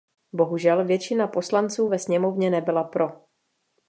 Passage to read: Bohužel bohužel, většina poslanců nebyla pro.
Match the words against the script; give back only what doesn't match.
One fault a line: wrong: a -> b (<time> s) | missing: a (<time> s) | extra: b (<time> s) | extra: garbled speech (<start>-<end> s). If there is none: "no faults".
missing: bohužel (0.9 s)
extra: ve sněmovně (1.9 s)